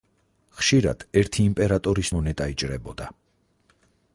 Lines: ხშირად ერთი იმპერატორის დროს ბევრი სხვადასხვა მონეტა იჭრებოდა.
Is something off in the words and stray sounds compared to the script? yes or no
yes